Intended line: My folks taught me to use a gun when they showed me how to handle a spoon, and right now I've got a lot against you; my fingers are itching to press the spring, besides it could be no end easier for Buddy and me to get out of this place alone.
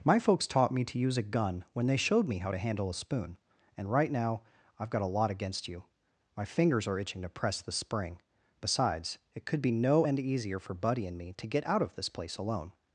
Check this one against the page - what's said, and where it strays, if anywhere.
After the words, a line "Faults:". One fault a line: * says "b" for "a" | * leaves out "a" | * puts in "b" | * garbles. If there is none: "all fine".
My folks taught me to use a gun when they showed me how to handle a spoon, and right now I've got a lot against you; my fingers are itching to press the spring, besides it could be no end easier for Buddy and me to get out of this place alone.
Faults:
all fine